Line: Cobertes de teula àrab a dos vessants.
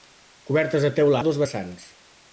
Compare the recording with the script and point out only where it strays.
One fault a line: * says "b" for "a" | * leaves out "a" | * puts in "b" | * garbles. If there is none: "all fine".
* leaves out "àrab"